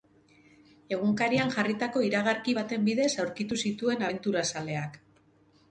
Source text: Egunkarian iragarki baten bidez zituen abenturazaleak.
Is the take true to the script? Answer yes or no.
no